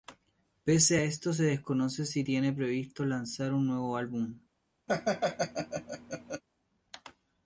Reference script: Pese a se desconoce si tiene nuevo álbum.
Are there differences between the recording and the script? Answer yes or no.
yes